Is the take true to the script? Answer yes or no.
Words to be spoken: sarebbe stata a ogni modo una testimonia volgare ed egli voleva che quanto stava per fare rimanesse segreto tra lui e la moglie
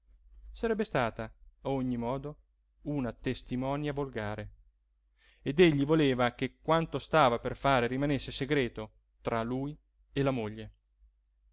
yes